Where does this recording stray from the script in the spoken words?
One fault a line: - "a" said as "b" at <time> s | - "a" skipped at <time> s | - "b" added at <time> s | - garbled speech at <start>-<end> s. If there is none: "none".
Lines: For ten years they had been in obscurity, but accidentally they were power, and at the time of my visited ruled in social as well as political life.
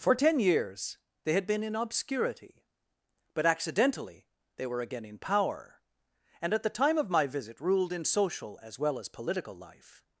- "again in" added at 4.8 s
- "visited" said as "visit" at 7.3 s